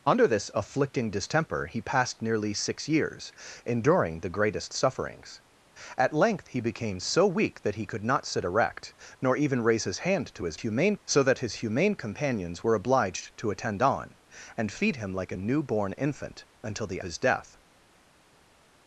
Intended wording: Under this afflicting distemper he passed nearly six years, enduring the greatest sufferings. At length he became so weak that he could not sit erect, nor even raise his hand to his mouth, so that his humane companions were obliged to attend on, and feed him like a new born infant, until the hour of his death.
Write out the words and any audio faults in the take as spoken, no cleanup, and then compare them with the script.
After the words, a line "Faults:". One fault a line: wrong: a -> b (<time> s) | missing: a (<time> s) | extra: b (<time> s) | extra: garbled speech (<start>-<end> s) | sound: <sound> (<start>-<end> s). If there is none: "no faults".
Under this afflicting distemper he passed nearly six years, enduring the greatest sufferings. At length he became so weak that he could not sit erect, nor even raise his hand to his humane, so that his humane companions were obliged to attend on, and feed him like a new born infant, until the his death.
Faults:
wrong: mouth -> humane (10.5 s)
missing: hour of (17.0 s)